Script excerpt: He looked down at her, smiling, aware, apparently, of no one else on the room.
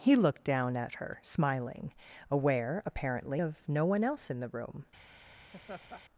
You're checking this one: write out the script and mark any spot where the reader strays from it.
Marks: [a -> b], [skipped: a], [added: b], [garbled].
He looked down at her, smiling, aware, apparently, of no one else [on -> in] the room.